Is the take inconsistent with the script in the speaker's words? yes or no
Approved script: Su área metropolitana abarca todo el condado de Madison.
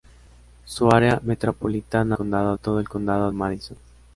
yes